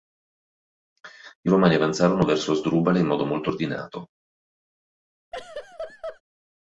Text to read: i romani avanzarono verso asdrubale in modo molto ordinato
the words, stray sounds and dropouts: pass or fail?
fail